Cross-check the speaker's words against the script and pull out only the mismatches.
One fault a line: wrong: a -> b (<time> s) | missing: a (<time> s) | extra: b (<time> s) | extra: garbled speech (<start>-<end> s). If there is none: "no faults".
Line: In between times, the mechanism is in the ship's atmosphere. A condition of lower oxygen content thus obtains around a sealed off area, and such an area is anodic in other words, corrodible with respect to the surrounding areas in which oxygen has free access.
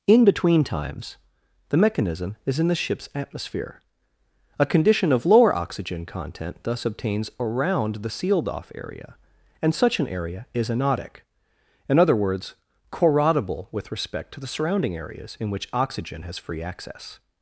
wrong: a -> the (8.0 s)